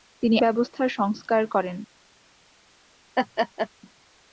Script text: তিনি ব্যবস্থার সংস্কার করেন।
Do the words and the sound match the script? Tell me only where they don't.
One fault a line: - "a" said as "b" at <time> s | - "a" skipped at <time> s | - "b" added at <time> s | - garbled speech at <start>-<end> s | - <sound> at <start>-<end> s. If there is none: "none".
- laugh at 3.2-3.7 s